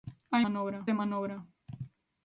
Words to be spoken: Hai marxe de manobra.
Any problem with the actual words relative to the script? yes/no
yes